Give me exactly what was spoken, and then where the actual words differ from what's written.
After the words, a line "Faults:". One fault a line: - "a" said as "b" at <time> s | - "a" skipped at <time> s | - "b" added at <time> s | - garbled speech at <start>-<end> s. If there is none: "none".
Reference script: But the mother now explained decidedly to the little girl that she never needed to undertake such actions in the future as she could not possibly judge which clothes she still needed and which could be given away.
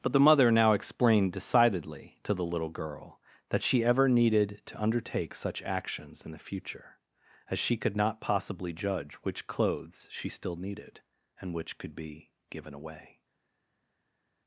But the mother now explained decidedly to the little girl that she ever needed to undertake such actions in the future as she could not possibly judge which clothes she still needed and which could be given away.
Faults:
- "never" said as "ever" at 3.8 s